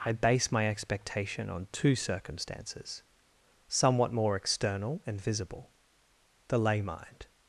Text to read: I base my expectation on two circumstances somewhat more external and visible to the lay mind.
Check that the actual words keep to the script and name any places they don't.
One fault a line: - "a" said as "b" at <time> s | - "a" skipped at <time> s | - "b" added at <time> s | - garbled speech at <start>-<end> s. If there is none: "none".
- "to" skipped at 5.7 s